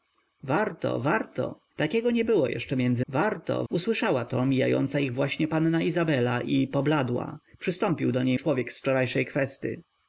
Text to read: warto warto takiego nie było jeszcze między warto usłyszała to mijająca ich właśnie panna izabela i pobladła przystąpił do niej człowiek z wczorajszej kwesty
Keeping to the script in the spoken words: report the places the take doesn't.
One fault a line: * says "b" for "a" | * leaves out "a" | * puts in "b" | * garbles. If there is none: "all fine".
all fine